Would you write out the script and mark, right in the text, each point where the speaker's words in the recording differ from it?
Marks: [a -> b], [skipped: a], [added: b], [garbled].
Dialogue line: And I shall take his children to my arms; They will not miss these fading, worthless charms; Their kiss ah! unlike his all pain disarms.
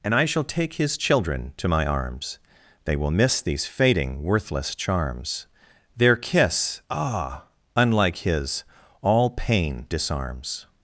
And I shall take his children to my arms; They will [skipped: not] miss these fading, worthless charms; Their kiss ah! unlike his all pain disarms.